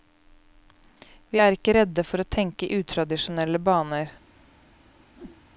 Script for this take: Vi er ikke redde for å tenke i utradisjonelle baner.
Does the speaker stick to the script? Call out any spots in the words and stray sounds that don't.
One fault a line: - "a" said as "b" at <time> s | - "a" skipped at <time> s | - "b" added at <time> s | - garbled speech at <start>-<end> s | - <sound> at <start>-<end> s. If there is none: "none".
- whoosh at 5.1-5.4 s